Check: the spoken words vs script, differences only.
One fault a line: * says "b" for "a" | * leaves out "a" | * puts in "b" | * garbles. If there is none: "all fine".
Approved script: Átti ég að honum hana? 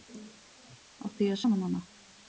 all fine